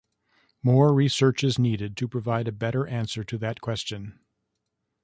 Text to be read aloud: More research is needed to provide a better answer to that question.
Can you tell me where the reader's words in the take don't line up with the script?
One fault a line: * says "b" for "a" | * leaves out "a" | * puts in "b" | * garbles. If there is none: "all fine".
all fine